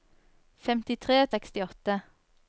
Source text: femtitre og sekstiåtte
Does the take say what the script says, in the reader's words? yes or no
yes